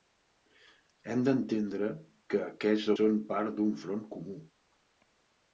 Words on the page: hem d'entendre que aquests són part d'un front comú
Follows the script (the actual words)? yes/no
yes